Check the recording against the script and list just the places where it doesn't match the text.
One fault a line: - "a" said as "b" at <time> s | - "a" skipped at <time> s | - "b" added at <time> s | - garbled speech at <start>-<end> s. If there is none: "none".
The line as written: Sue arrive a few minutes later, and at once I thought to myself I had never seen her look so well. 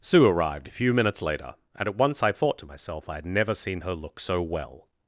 - "arrive" said as "arrived" at 0.2 s